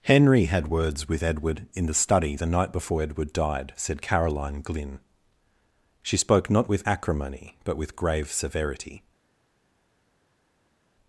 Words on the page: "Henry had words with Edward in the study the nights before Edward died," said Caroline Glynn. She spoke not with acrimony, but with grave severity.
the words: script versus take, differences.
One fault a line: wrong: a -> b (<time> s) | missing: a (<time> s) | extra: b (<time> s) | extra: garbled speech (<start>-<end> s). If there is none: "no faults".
wrong: nights -> night (2.5 s)